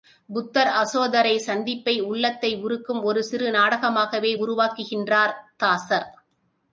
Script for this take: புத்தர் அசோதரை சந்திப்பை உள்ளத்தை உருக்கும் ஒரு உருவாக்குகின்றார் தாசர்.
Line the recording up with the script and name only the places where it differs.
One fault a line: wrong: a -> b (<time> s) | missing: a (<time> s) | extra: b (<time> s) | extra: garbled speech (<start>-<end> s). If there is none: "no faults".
extra: சிறு நாடகமாகவே (3.2 s)